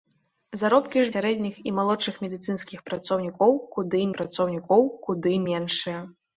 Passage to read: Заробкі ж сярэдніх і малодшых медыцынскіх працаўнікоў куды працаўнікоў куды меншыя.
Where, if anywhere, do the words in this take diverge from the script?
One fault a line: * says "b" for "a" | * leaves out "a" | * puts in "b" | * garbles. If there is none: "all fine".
all fine